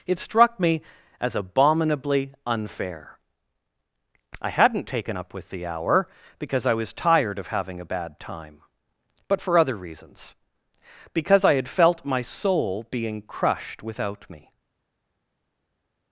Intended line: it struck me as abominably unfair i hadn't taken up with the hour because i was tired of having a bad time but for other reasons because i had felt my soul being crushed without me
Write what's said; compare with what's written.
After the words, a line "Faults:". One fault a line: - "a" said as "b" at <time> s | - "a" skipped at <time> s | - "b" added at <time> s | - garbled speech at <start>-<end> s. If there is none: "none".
it struck me as abominably unfair i hadn't taken up with the hour because i was tired of having a bad time but for other reasons because i had felt my soul being crushed without me
Faults:
none